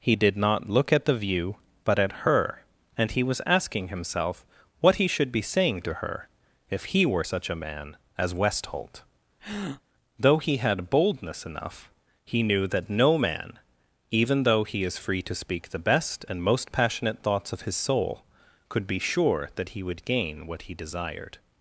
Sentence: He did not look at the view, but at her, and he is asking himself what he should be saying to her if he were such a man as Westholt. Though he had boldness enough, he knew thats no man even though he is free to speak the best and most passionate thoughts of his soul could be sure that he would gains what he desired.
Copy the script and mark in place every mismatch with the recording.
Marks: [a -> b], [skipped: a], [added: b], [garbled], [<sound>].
He did not look at the view, but at her, and he [is -> was] asking himself what he should be saying to her if he were such a man as Westholt. [breath] Though he had boldness enough, he knew [thats -> that] no man even though he is free to speak the best and most passionate thoughts of his soul could be sure that he would [gains -> gain] what he desired.